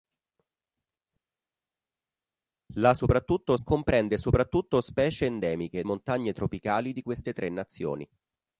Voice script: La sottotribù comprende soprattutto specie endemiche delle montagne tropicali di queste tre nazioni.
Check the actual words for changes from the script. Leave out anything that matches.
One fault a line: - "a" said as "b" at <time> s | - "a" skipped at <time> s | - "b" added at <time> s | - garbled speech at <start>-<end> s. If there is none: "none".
- "sottotribù" said as "soprattutto" at 2.9 s
- "delle" skipped at 5.8 s